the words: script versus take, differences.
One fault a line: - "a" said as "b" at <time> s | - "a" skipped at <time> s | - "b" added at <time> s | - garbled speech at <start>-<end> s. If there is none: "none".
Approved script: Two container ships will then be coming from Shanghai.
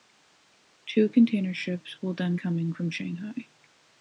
- "be" skipped at 2.4 s